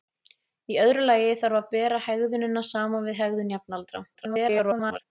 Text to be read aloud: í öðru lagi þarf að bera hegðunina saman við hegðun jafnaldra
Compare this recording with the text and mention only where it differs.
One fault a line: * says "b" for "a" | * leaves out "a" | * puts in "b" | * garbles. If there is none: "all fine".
* garbles